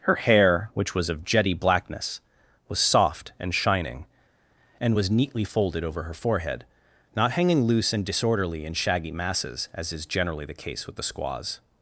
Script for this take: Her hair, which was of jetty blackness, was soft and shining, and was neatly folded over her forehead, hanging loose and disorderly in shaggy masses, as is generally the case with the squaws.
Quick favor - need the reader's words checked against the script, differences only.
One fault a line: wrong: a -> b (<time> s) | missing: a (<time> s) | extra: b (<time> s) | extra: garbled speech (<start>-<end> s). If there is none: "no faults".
extra: not (7.2 s)